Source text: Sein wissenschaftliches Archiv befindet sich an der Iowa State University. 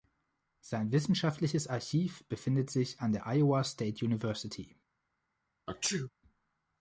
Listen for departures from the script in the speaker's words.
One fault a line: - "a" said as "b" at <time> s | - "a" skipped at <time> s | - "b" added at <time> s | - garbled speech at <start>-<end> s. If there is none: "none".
none